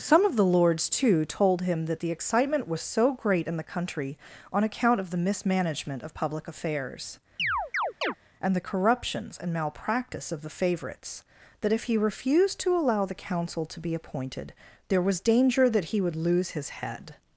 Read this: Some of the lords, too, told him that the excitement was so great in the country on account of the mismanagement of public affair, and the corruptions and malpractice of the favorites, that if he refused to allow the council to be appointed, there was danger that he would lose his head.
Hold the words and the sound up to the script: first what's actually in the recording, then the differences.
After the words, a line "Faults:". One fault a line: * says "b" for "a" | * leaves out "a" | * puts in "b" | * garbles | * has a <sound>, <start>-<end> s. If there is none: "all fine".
Some of the lords, too, told him that the excitement was so great in the country on account of the mismanagement of public affairs, and the corruptions and malpractice of the favorites, that if he refused to allow the council to be appointed, there was danger that he would lose his head.
Faults:
* says "affairs" for "affair"
* has a chirp, 7.4-8.1 s